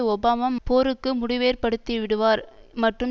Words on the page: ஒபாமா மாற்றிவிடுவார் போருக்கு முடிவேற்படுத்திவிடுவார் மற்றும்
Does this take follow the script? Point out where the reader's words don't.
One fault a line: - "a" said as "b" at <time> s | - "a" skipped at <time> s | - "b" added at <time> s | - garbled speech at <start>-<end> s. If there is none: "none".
- "மாற்றிவிடுவார்" skipped at 0.5 s